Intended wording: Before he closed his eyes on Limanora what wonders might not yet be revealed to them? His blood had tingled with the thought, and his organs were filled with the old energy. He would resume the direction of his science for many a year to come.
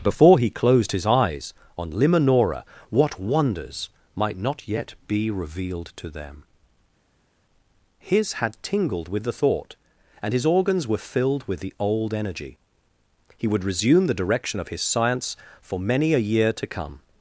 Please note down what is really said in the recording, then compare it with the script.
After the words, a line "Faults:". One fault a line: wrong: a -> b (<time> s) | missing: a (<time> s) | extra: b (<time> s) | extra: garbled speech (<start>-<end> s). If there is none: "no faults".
Before he closed his eyes on Limanora what wonders might not yet be revealed to them? His had tingled with the thought, and his organs were filled with the old energy. He would resume the direction of his science for many a year to come.
Faults:
missing: blood (8.3 s)